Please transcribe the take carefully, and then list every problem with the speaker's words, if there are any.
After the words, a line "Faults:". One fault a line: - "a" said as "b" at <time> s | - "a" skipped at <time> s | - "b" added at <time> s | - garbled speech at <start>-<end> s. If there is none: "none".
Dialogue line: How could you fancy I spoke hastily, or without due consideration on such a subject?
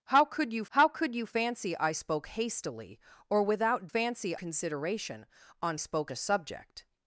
How could you how could you fancy I spoke hastily, or without fancy consideration on spoke a subject?
Faults:
- "how could you" added at 0.7 s
- "due" said as "fancy" at 3.9 s
- "such" said as "spoke" at 5.8 s